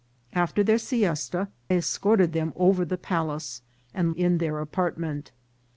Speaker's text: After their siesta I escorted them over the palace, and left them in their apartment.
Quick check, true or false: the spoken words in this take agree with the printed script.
false